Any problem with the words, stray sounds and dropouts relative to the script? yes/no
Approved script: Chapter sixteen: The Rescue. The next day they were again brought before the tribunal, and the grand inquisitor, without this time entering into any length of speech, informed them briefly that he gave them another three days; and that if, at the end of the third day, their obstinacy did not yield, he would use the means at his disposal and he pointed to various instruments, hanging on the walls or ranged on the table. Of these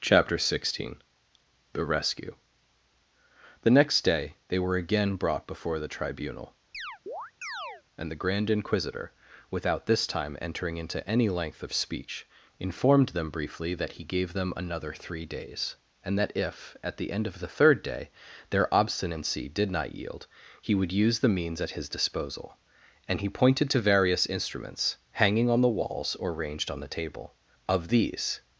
yes